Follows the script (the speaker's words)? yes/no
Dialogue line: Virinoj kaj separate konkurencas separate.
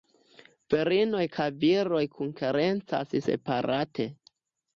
no